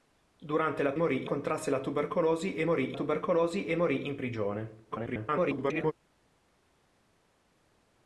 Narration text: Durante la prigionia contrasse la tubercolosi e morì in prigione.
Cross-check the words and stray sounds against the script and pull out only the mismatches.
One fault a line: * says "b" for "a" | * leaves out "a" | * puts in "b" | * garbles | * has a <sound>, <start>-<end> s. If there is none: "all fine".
* says "morì" for "prigionia"
* puts in "tubercolosi e morì"
* garbles